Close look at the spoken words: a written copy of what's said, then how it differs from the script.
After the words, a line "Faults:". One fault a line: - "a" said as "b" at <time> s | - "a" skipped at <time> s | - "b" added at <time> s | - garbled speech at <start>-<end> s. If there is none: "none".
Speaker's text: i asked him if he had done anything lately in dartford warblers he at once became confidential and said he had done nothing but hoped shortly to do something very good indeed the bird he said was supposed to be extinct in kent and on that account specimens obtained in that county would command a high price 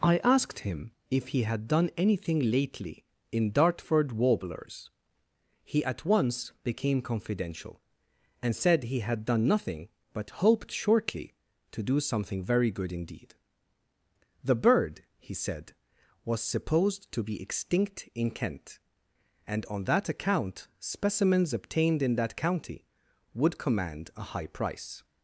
i asked him if he had done anything lately in dartford warblers he at once became confidential and said he had done nothing but hoped shortly to do something very good indeed the bird he said was supposed to be extinct in kent and on that account specimens obtained in that county would command a high price
Faults:
none